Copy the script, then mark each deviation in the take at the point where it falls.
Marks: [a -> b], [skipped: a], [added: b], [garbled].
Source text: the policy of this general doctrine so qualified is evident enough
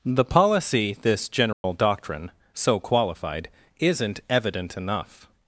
the policy [skipped: of] this general doctrine so qualified [is -> isn't] evident enough